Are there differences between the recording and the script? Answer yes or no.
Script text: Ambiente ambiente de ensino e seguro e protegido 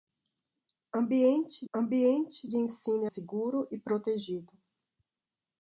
no